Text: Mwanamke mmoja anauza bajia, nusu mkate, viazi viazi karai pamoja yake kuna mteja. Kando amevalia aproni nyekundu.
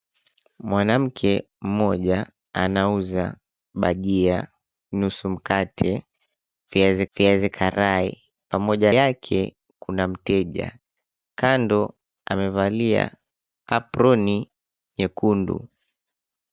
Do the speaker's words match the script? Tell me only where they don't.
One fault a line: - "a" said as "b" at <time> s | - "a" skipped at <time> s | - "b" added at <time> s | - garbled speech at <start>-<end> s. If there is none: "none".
none